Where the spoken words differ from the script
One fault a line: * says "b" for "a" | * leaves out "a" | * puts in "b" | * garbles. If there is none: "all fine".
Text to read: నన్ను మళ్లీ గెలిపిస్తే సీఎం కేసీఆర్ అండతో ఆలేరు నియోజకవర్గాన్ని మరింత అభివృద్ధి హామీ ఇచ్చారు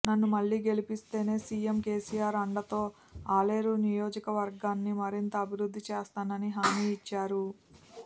* puts in "చేస్తానని"